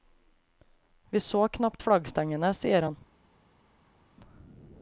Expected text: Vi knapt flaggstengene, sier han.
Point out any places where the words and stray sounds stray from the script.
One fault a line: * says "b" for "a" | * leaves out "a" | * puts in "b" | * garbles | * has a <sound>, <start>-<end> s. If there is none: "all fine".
* puts in "så"